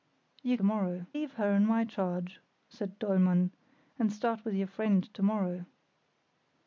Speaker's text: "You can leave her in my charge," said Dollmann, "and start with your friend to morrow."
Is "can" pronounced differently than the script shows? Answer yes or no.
yes